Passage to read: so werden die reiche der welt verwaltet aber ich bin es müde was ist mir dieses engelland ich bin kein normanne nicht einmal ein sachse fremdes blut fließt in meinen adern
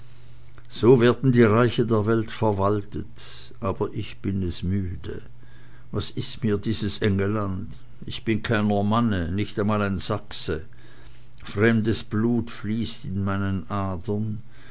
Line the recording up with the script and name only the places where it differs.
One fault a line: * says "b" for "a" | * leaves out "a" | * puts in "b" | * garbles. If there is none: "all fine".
all fine